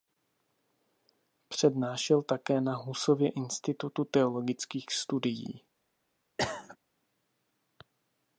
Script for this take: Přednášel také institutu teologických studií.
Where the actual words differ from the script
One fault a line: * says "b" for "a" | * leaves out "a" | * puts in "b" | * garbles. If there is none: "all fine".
* puts in "na Husově"